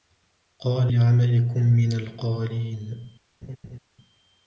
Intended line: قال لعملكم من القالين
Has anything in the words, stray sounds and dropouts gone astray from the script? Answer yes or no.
yes